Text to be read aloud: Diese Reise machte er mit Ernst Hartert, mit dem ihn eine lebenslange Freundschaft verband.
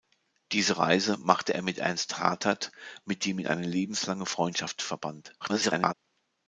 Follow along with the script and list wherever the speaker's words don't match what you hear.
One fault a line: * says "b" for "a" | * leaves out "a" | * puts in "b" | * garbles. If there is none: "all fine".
* garbles